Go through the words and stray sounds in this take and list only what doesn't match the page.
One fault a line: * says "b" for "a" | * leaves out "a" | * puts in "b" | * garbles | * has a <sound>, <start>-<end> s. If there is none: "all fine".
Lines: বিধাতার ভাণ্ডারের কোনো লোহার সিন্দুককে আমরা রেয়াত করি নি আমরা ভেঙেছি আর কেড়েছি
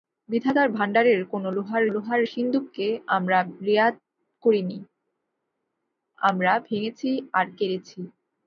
* puts in "লোহার"